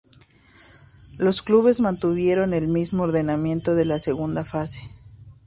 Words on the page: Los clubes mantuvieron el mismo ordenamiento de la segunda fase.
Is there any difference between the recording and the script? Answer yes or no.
no